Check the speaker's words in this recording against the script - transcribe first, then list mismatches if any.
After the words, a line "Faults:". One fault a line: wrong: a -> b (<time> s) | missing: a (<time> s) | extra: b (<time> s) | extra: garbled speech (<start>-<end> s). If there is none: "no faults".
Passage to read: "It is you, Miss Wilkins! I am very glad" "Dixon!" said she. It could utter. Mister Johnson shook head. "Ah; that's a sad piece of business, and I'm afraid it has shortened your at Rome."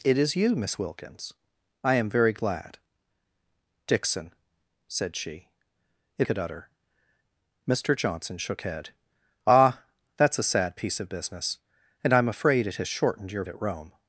"It is you, Miss Wilkins! I am very glad" "Dixon!" said she. It could utter. Mister Johnson shook head. "Ah; that's a sad piece of business, and I'm afraid it has shortened your at Rome."
Faults:
no faults